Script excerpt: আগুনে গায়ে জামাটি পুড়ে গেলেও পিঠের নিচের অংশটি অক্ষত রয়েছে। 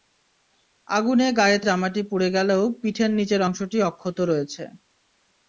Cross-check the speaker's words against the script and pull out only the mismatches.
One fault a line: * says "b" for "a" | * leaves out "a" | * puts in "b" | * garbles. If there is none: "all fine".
all fine